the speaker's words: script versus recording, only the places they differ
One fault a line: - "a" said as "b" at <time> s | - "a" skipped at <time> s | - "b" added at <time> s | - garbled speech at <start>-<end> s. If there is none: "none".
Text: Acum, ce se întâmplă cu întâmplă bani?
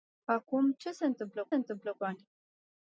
none